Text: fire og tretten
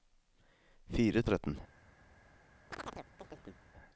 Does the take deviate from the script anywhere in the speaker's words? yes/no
no